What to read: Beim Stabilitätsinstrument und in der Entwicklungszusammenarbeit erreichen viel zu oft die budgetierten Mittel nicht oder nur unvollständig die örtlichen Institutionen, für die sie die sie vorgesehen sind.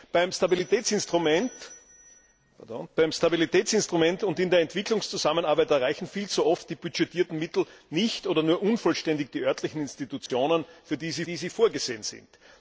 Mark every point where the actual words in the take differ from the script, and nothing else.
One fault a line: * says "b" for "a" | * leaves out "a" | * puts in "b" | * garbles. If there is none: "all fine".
all fine